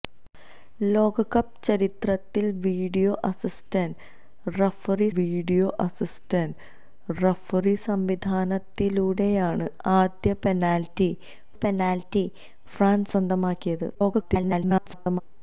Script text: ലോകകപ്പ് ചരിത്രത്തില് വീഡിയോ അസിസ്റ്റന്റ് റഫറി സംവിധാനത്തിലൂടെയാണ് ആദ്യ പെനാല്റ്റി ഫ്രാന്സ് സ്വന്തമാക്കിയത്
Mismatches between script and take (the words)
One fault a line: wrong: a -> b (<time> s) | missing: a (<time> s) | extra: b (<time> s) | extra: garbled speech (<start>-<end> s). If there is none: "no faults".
extra: വീഡിയോ അസിസ്റ്റന്റ് റഫറി (5.2 s)
extra: പെനാല്റ്റി (11.6 s)
extra: garbled speech (13.9-15.2 s)